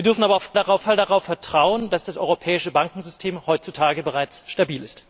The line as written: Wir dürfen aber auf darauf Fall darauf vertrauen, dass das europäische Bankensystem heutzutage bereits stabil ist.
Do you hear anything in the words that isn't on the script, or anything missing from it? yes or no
no